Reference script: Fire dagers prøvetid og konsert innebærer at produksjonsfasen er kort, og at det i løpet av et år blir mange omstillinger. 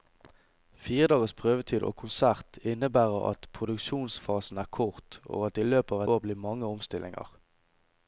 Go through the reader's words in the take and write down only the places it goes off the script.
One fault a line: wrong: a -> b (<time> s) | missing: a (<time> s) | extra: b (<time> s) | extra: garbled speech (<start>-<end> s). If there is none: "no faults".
missing: et (6.0 s)